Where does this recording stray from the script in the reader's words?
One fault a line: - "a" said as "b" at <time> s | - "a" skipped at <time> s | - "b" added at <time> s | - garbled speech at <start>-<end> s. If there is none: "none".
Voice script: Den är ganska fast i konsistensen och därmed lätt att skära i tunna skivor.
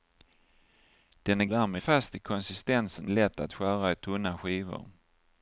- "ganska" said as "därmed" at 1.5 s
- "och därmed" skipped at 3.1 s